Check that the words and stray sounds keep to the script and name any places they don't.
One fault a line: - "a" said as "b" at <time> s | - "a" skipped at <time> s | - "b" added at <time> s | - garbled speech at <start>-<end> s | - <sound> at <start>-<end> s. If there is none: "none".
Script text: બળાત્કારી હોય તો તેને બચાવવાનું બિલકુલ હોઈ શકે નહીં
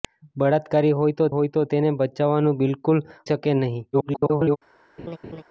- "હોય તો" added at 1.3 s
- "હોઈ" skipped at 3.0 s
- garbled speech at 3.9-4.6 s
- laugh at 5.0-5.4 s